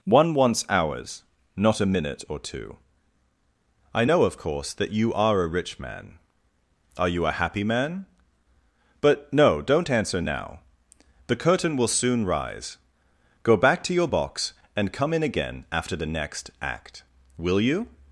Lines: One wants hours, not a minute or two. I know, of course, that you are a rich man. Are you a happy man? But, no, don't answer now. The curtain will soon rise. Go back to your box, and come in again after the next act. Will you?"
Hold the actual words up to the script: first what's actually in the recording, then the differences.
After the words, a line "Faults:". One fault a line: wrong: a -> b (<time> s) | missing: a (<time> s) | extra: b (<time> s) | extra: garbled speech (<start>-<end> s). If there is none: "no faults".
One wants hours, not a minute or two. I know, of course, that you are a rich man. Are you a happy man? But, no, don't answer now. The curtain will soon rise. Go back to your box, and come in again after the next act. Will you?"
Faults:
no faults